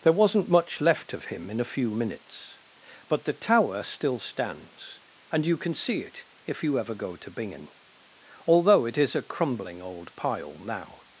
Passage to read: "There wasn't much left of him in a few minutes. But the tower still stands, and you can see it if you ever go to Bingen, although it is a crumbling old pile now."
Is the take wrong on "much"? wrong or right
right